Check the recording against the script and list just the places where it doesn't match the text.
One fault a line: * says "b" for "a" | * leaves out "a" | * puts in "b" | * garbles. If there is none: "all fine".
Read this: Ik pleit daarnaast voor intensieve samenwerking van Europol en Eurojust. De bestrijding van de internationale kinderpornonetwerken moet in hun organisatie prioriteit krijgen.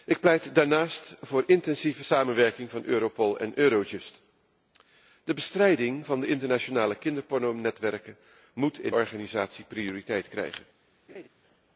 * leaves out "hun"